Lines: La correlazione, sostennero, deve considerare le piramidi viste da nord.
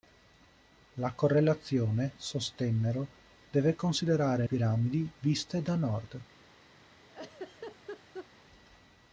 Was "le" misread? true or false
true